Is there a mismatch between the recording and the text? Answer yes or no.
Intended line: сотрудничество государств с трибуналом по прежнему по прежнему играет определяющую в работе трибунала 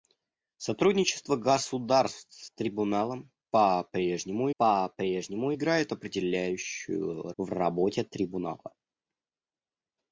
no